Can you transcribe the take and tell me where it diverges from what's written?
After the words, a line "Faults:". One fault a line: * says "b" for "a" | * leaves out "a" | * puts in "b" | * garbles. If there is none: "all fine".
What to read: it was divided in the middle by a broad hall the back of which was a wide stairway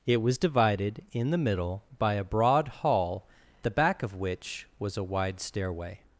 it was divided in the middle by a broad hall the back of which was a wide stairway
Faults:
all fine